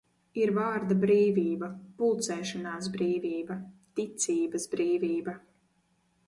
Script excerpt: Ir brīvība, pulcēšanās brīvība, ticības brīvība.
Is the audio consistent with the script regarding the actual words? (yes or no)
no